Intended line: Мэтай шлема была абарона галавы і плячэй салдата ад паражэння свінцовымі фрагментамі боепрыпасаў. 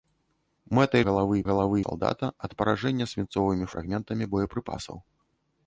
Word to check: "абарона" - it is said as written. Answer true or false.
false